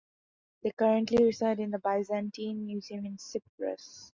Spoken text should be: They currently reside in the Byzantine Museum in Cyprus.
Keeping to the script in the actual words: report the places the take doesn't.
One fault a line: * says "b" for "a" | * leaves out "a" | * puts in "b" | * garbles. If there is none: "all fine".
all fine